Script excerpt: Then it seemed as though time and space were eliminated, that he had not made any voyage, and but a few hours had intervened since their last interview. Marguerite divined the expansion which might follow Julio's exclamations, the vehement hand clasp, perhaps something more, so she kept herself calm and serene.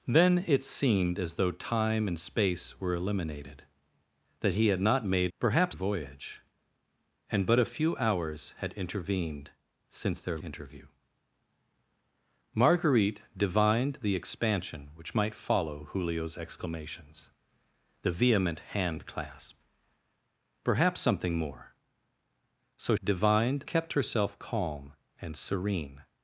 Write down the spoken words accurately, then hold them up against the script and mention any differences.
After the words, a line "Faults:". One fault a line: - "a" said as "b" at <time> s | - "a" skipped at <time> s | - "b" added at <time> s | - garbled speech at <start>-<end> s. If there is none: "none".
Then it seemed as though time and space were eliminated, that he had not made perhaps voyage, and but a few hours had intervened since their interview. Marguerite divined the expansion which might follow Julio's exclamations, the vehement hand clasp, perhaps something more, so divined kept herself calm and serene.
Faults:
- "any" said as "perhaps" at 5.4 s
- "last" skipped at 10.4 s
- "she" said as "divined" at 23.0 s